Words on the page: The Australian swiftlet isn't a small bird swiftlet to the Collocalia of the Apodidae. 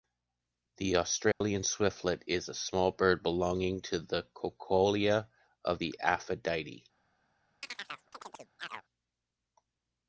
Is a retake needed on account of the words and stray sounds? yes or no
yes